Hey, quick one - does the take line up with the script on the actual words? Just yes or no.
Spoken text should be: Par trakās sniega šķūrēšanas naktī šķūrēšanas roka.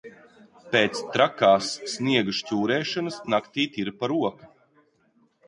no